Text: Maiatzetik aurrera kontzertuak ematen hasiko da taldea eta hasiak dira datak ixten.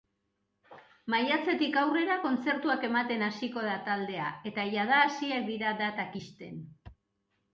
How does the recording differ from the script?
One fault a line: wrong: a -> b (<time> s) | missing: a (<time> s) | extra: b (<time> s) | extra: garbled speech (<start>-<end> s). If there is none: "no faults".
extra: jada (4.8 s)